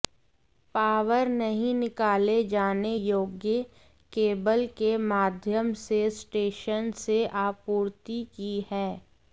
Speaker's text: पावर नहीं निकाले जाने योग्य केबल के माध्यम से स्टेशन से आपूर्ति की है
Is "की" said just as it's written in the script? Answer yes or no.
yes